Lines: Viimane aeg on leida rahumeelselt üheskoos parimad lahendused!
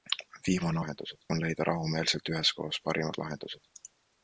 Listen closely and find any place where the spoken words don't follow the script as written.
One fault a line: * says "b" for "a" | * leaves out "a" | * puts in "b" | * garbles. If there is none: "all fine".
* says "lahendused" for "aeg"